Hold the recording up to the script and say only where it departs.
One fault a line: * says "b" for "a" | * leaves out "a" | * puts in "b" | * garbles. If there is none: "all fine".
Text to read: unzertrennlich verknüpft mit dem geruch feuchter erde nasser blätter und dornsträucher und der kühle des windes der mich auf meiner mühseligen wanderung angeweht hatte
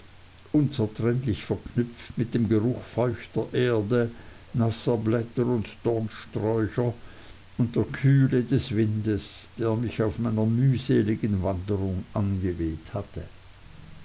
all fine